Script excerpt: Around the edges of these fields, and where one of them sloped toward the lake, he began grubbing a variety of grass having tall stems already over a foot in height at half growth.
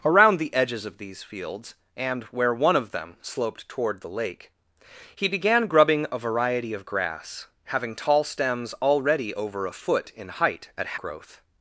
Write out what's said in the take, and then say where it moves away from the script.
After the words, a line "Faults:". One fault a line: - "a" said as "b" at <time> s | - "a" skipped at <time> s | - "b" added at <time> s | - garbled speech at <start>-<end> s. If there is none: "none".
Around the edges of these fields, and where one of them sloped toward the lake, he began grubbing a variety of grass having tall stems already over a foot in height at growth.
Faults:
- "half" skipped at 11.0 s